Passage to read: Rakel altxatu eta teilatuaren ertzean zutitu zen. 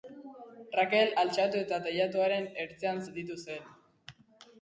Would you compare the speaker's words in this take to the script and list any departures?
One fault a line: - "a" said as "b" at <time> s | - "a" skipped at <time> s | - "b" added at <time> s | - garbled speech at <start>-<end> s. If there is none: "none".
none